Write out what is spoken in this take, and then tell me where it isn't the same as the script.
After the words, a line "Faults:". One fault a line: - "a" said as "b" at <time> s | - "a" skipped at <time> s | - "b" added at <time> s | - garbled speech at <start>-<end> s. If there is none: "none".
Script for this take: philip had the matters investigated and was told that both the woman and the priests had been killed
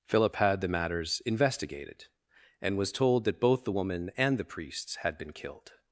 philip had the matters investigated and was told that both the woman and the priests had been killed
Faults:
none